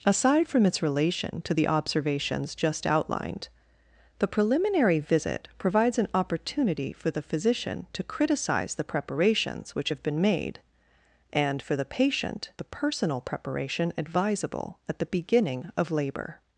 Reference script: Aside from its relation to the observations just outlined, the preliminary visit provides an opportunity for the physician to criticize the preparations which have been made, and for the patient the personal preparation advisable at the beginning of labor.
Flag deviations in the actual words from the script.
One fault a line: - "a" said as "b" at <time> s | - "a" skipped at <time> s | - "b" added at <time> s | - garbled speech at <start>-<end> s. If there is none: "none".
none